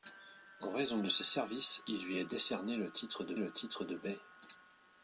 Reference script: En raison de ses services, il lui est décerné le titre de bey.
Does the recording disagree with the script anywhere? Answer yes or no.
yes